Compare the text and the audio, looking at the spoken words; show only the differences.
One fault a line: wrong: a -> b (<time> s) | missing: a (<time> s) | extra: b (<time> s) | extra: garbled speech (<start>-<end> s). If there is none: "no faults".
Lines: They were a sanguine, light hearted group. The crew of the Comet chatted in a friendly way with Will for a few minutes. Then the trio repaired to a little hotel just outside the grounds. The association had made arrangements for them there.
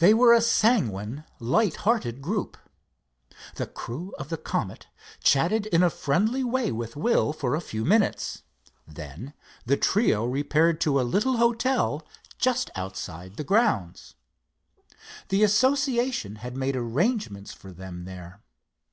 no faults